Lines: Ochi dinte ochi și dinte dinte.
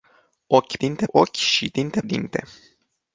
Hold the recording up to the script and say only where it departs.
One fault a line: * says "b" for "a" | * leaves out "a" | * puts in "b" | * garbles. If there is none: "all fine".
all fine